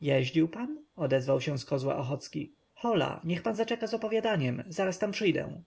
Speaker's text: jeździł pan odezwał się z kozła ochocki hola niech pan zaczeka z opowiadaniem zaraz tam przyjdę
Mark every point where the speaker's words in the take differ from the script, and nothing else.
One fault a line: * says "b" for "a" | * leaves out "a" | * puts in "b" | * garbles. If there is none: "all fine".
all fine